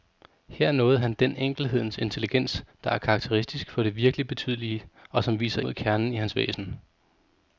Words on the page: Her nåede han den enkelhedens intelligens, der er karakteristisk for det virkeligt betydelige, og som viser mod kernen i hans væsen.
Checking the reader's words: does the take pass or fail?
pass